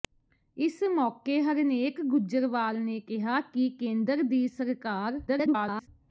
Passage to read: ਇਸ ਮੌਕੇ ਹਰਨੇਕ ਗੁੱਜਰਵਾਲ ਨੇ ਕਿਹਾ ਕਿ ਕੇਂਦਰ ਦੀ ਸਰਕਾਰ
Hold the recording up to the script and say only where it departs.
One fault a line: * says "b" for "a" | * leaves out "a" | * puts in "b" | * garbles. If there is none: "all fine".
* garbles